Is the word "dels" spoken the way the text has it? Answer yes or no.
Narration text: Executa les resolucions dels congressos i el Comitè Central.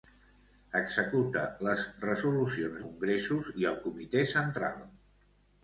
no